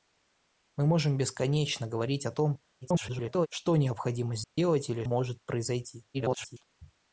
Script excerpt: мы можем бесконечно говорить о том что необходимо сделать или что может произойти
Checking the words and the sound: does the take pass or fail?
fail